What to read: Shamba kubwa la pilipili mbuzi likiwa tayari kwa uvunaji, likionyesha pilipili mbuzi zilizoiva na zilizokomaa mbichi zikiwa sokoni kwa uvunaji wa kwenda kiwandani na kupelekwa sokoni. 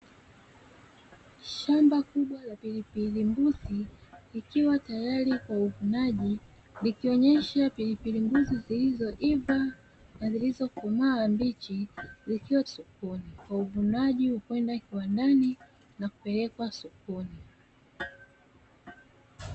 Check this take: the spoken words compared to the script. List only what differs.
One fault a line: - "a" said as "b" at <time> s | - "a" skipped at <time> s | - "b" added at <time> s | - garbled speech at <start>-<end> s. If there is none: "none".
none